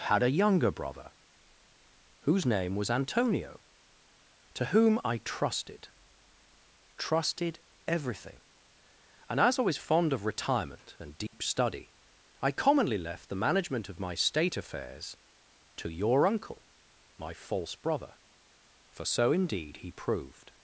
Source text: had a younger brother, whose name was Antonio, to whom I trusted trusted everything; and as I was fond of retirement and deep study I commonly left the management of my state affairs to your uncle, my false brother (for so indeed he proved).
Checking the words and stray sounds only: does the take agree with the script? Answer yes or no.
no